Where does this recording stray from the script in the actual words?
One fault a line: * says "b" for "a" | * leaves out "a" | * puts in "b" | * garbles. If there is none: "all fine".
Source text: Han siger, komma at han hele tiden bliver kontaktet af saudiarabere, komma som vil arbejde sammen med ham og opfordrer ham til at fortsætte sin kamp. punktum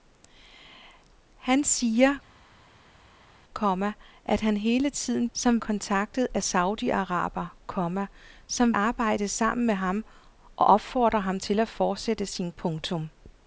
* says "som" for "bliver"
* leaves out "vil"
* leaves out "kamp"